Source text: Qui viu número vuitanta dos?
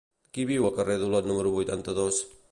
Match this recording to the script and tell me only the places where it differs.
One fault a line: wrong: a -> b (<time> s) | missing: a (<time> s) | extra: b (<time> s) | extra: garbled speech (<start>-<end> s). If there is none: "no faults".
extra: al carrer d'Olot (0.6 s)